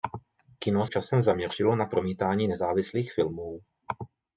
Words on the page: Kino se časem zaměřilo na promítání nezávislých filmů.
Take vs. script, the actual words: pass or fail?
fail